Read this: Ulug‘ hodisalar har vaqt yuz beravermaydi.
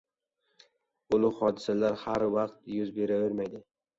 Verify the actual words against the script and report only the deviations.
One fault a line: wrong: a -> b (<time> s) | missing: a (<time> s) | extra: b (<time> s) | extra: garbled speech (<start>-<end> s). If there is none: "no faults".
no faults